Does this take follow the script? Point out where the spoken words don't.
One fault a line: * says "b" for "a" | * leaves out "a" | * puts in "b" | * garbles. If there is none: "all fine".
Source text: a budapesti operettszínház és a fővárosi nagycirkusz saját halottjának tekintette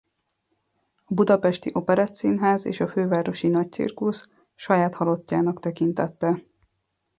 all fine